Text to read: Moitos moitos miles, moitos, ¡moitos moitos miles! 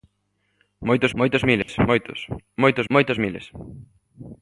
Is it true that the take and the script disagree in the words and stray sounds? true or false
true